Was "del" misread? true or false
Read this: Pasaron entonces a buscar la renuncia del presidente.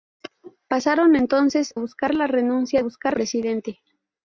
true